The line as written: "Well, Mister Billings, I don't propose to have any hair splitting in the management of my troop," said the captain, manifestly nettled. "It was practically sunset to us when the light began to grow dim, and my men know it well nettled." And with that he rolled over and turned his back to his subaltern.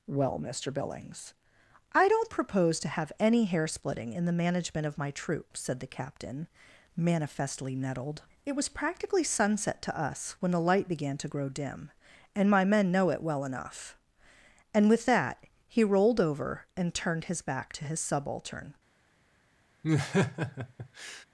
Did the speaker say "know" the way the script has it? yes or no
yes